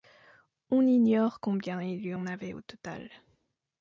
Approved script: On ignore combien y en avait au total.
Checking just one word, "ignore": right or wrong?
right